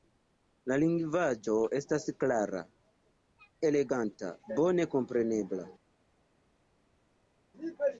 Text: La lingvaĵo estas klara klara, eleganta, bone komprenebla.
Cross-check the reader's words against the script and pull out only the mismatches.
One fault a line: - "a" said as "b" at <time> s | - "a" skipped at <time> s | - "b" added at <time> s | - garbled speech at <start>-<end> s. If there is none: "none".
- "klara" skipped at 2.6 s